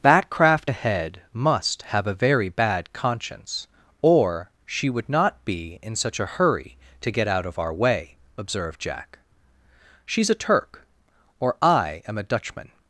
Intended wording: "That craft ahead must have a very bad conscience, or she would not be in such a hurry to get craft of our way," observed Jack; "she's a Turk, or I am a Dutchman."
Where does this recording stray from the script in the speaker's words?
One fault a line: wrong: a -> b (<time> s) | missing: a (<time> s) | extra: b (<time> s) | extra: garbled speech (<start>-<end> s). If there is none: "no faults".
wrong: craft -> out (7.3 s)